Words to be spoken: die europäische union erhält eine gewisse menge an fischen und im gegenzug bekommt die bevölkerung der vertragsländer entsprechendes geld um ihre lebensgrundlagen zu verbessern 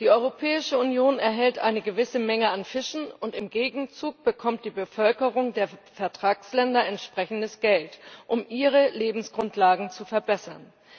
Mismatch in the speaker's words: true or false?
false